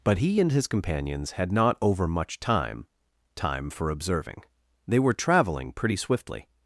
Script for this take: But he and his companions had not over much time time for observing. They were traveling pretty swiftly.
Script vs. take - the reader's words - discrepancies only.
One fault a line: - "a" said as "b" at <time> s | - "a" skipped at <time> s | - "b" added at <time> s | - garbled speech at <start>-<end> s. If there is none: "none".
none